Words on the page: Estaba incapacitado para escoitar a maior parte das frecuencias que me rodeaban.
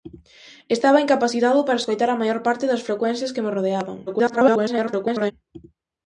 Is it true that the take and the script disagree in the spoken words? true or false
true